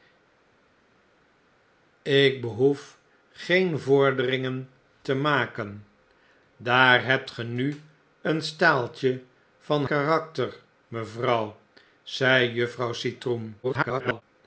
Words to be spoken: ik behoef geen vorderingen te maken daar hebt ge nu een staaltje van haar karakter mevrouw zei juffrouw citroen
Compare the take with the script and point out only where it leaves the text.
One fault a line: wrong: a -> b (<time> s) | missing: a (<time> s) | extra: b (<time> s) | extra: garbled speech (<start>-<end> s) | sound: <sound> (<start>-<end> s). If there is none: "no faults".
missing: haar (9.8 s)
extra: garbled speech (13.6-14.2 s)